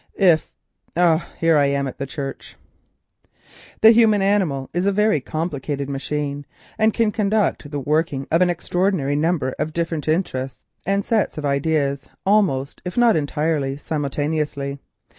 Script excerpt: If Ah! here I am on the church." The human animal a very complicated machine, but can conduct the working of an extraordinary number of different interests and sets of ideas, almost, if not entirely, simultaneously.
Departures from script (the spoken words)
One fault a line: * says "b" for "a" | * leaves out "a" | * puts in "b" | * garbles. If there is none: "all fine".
* says "at" for "on"
* puts in "is"
* says "and" for "but"